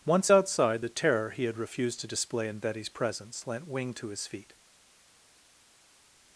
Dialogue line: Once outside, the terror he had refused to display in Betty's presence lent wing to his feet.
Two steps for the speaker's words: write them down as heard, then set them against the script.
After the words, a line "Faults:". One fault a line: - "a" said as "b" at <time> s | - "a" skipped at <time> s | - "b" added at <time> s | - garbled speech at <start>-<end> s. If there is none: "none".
Once outside, the terror he had refused to display in Betty's presence lent wing to his feet.
Faults:
none